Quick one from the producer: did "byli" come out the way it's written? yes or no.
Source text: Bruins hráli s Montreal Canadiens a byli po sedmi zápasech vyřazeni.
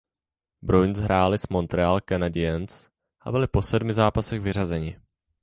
yes